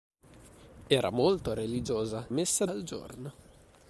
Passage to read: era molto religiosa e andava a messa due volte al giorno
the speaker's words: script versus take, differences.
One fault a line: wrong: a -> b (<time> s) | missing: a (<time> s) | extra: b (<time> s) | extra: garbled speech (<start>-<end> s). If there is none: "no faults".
missing: e andava (2.3 s)
missing: due volte (2.6 s)